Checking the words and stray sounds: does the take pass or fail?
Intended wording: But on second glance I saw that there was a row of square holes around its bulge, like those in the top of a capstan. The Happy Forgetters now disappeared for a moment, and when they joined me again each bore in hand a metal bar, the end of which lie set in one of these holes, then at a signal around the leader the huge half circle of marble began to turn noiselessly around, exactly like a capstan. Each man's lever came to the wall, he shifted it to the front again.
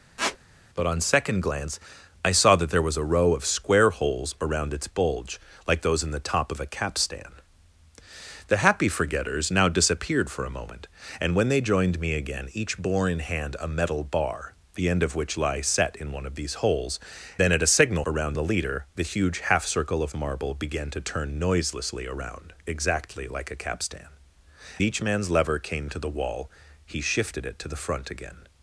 fail